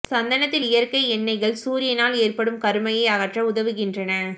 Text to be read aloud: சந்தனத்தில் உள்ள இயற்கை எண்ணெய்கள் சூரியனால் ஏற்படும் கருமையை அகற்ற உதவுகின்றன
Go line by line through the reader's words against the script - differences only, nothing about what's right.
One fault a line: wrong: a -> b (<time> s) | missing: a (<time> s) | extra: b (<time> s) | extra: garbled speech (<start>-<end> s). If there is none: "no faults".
missing: உள்ள (0.7 s)